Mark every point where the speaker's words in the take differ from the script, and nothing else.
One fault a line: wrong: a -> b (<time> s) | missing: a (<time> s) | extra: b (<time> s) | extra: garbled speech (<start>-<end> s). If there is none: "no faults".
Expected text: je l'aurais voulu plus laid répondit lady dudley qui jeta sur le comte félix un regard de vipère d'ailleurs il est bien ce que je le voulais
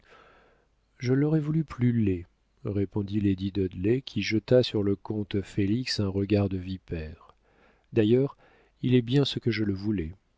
no faults